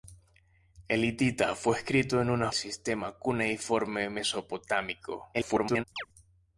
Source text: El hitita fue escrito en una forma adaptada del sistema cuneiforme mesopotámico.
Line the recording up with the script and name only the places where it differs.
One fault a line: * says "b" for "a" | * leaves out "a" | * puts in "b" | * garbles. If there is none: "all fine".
* leaves out "forma adaptada del"
* garbles